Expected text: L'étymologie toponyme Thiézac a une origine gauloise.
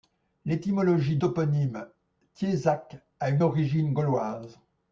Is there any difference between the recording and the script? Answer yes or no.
no